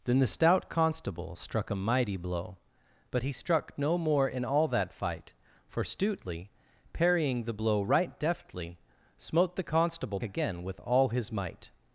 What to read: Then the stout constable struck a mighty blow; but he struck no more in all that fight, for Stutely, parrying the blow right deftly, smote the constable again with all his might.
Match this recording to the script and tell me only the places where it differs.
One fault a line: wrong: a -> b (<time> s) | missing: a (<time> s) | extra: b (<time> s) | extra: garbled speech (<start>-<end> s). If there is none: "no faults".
no faults